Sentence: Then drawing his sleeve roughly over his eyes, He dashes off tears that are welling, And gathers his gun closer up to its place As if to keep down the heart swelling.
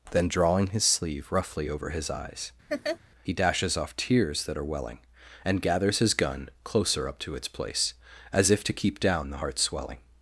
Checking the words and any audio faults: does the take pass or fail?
fail